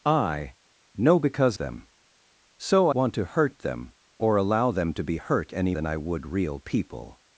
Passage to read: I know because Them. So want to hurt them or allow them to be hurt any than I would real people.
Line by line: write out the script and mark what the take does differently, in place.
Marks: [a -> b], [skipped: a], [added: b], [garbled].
I know because Them. So want to hurt them or allow them to be hurt any than I would real people.